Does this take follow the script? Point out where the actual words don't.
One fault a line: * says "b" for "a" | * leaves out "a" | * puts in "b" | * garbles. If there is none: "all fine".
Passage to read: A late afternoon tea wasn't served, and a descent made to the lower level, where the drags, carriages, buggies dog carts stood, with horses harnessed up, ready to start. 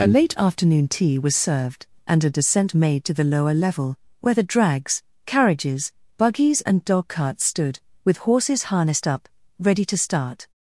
* says "was" for "wasn't"
* puts in "and"